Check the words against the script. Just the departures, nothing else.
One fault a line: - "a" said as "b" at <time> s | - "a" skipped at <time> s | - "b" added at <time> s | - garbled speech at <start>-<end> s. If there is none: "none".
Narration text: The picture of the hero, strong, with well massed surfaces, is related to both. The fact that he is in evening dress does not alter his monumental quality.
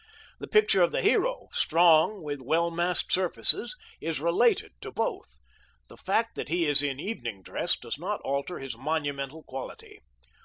none